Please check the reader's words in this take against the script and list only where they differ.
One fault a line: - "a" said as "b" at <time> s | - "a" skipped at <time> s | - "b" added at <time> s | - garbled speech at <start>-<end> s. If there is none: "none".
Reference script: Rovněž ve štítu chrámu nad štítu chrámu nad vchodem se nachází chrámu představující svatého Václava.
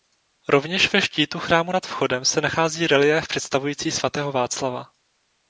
- "štítu chrámu nad" skipped at 1.9 s
- "chrámu" said as "reliéf" at 2.9 s